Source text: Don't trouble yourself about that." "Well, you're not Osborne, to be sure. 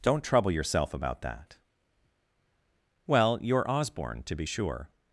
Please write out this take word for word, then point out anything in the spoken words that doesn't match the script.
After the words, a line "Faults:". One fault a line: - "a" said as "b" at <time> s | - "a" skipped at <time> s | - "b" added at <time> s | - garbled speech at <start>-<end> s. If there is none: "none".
Don't trouble yourself about that." "Well, you're Osborne, to be sure.
Faults:
- "not" skipped at 3.7 s